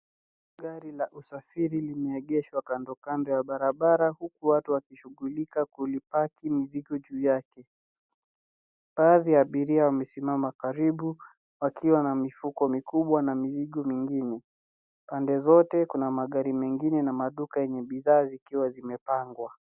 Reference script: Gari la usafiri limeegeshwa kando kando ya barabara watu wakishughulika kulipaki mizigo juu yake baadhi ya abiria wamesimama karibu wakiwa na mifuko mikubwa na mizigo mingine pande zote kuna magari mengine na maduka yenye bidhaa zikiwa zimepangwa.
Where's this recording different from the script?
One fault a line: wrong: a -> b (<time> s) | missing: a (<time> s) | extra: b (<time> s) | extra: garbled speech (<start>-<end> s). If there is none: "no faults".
extra: huku (4.1 s)